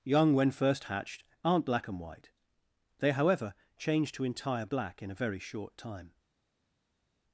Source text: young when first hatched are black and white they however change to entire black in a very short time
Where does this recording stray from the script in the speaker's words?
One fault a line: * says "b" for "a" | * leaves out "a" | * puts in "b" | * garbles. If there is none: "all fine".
* says "aren't" for "are"